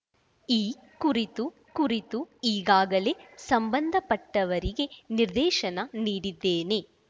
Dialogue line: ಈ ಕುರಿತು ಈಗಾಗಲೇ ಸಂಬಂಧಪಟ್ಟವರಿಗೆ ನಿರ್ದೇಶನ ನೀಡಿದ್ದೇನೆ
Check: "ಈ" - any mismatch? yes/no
no